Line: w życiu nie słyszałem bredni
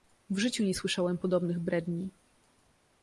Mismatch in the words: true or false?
true